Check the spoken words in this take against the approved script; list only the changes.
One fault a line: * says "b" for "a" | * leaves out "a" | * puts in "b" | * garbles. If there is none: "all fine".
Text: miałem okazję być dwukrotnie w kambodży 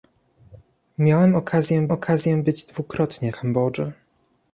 * puts in "okazję"
* leaves out "w"